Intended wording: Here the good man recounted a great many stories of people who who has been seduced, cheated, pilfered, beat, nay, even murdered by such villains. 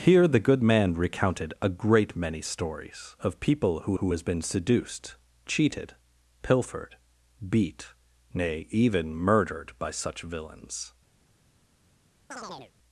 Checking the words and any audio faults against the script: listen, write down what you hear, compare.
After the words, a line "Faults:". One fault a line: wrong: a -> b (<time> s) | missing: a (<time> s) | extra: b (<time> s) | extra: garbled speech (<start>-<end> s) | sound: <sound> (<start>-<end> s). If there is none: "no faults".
Here the good man recounted a great many stories of people who who has been seduced, cheated, pilfered, beat, nay, even murdered by such villains.
Faults:
sound: chirp (12.3-12.7 s)